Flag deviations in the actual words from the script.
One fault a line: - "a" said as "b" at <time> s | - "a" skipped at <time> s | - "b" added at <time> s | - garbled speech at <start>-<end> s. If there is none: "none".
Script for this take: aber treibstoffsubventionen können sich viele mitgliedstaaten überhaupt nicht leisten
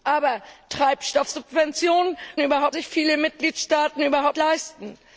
- "können" said as "überhaupt" at 2.4 s
- "nicht" skipped at 4.4 s